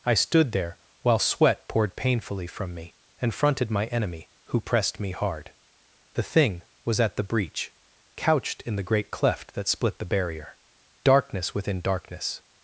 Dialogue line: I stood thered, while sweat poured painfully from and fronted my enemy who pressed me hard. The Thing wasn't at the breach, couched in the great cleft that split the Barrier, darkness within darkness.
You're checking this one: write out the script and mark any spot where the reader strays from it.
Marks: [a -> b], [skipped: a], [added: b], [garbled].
I stood [thered, -> there] while sweat poured painfully from [added: me] and fronted my enemy who pressed me hard. The Thing [wasn't -> was] at the breach, couched in the great cleft that split the Barrier, darkness within darkness.